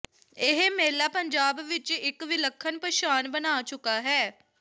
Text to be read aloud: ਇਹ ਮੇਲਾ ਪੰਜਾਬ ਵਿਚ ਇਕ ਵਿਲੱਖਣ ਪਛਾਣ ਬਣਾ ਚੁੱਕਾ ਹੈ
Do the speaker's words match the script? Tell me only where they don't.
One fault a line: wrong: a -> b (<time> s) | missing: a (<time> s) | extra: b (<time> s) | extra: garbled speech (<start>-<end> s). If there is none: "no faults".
no faults